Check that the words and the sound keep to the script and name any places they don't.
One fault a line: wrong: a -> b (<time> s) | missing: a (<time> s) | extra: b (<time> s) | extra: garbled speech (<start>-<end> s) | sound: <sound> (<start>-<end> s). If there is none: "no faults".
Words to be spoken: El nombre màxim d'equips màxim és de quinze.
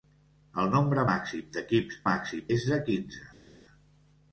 no faults